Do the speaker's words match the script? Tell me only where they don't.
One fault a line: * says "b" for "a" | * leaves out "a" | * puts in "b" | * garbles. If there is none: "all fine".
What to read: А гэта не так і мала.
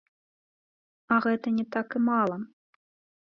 all fine